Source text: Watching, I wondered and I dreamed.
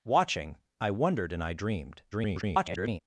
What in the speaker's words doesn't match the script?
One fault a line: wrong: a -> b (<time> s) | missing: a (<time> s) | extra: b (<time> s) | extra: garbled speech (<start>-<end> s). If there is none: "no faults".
extra: garbled speech (2.1-3.0 s)